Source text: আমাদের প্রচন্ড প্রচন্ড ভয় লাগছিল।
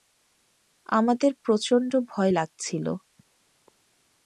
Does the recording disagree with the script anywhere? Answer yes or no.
yes